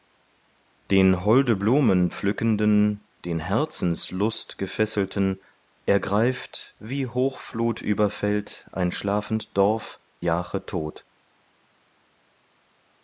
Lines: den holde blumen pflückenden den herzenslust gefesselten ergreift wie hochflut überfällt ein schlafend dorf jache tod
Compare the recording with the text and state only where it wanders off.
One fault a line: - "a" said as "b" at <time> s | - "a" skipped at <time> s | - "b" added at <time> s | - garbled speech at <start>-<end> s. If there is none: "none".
none